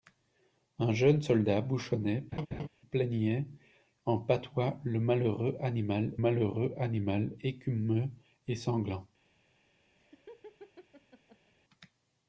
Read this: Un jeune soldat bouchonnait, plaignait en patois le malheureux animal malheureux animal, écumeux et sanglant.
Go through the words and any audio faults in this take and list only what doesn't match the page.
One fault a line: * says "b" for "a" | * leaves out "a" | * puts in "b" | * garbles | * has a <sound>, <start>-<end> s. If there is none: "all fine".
* has a laugh, 2.3-2.7 s
* has a laugh, 10.0-11.5 s